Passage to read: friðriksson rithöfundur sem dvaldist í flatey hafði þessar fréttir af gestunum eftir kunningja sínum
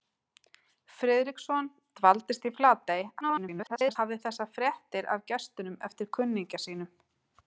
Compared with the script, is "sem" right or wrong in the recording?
wrong